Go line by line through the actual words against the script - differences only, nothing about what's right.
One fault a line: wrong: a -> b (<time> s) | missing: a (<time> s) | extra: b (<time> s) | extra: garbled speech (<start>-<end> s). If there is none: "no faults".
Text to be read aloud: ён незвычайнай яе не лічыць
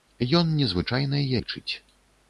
missing: яе не (1.3 s)